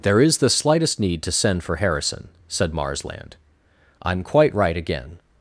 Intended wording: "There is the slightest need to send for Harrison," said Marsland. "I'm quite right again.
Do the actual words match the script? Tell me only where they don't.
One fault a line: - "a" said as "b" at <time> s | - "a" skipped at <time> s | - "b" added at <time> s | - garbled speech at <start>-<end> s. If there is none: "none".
none